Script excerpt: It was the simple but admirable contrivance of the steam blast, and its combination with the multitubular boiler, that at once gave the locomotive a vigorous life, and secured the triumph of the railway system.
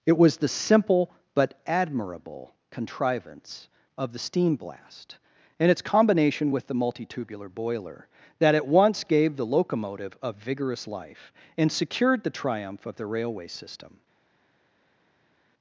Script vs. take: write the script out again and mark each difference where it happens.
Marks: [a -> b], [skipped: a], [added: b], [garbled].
It was the simple but admirable contrivance of the steam blast, and its combination with the multitubular boiler, that at once gave the locomotive a vigorous life, and secured the triumph of the railway system.